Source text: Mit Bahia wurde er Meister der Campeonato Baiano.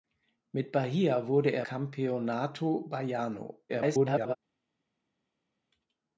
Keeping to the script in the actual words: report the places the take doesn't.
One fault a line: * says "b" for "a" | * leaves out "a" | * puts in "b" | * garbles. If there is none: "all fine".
* leaves out "Meister der"
* garbles